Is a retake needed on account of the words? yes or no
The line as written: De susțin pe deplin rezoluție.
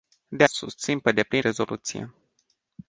no